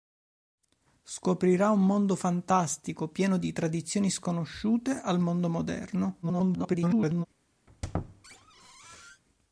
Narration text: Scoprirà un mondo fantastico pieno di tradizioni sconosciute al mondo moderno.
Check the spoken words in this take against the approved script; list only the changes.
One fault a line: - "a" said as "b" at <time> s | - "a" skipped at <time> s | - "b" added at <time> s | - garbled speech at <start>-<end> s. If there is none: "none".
- garbled speech at 6.2-7.3 s